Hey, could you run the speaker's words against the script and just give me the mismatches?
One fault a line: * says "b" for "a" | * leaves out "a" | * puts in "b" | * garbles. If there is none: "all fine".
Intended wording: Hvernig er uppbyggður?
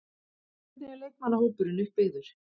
* puts in "leikmannahópurinn"